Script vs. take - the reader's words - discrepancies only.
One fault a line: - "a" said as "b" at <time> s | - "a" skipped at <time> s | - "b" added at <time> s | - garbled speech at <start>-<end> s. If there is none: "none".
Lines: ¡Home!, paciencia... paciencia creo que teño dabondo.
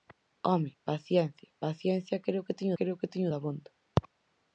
- "creo que teño" added at 2.8 s